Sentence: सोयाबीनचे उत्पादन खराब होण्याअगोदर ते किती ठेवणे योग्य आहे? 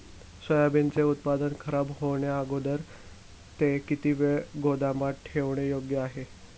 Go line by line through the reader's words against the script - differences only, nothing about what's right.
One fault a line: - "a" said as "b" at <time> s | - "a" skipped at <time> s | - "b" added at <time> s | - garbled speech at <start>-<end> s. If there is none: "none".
- "वेळ गोदामात" added at 4.1 s